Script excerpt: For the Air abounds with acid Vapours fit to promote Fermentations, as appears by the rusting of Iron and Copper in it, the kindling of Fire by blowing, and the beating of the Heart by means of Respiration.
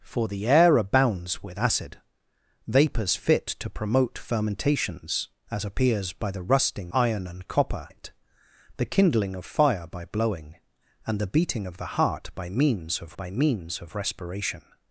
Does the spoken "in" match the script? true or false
false